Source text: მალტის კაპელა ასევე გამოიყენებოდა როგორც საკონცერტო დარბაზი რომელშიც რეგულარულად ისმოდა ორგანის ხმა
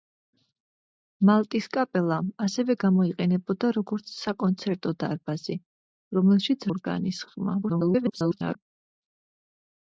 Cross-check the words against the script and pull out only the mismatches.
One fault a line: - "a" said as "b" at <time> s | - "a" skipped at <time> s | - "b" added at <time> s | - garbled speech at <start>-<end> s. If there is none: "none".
- "რეგულარულად ისმოდა" skipped at 6.7 s
- garbled speech at 7.6-8.6 s